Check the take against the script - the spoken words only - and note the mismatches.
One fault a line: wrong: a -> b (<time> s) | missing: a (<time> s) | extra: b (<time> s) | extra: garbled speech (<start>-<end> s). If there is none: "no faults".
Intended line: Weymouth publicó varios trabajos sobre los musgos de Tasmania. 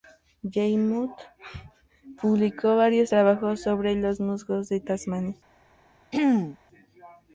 no faults